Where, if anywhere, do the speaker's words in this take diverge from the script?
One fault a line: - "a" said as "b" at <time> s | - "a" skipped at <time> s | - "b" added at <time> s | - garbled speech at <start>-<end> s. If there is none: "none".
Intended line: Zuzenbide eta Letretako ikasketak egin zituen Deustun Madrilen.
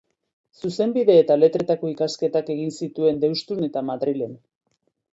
- "eta" added at 3.7 s